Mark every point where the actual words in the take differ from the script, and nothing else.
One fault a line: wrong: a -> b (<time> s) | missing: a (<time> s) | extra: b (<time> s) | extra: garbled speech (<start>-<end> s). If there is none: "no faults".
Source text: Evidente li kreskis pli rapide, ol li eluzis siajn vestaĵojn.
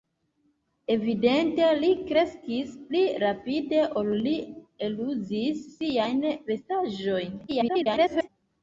extra: garbled speech (7.5-8.3 s)